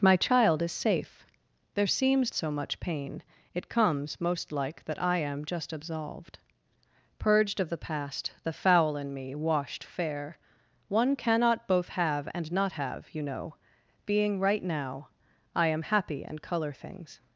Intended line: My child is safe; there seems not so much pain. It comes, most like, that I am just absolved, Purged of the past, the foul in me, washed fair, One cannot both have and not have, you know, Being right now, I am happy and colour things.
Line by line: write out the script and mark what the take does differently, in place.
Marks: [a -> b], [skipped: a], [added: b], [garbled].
My child is safe; there seems [skipped: not] so much pain. It comes, most like, that I am just absolved, Purged of the past, the foul in me, washed fair, One cannot both have and not have, you know, Being right now, I am happy and colour things.